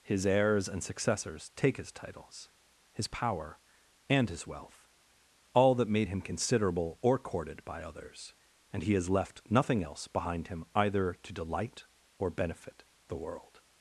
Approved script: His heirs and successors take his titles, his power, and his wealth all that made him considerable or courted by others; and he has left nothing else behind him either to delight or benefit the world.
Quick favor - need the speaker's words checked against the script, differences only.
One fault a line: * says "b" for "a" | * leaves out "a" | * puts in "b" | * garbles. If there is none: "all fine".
all fine